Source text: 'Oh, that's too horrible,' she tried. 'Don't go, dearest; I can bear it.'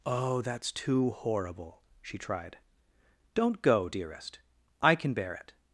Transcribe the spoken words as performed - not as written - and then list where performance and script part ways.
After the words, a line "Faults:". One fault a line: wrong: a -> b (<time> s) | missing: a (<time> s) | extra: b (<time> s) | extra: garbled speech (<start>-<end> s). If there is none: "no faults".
'Oh, that's too horrible,' she tried. 'Don't go, dearest; I can bear it.'
Faults:
no faults